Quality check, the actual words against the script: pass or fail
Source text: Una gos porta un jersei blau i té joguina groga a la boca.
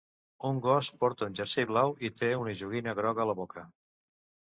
fail